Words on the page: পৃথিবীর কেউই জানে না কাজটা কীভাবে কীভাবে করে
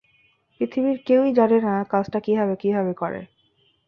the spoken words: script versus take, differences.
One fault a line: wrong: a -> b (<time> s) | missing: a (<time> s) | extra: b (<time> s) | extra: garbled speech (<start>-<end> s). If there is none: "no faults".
no faults